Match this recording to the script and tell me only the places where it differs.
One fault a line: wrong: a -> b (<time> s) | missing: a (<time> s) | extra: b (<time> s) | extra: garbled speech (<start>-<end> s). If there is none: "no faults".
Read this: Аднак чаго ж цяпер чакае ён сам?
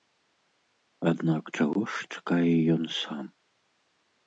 missing: цяпер (2.1 s)